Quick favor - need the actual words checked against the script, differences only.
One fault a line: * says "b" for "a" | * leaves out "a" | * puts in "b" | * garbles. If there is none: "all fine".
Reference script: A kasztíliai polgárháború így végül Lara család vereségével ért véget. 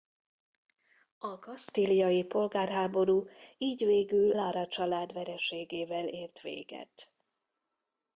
all fine